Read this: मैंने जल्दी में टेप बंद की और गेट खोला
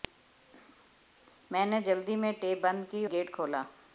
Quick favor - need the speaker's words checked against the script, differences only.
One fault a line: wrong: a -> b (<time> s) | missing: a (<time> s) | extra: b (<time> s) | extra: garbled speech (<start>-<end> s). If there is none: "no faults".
missing: और (3.0 s)